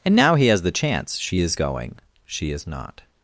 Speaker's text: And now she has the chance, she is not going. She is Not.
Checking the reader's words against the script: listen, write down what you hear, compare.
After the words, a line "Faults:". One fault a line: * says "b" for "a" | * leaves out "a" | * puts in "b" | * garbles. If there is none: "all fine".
And now he has the chance, she is going. She is Not.
Faults:
* says "he" for "she"
* leaves out "not"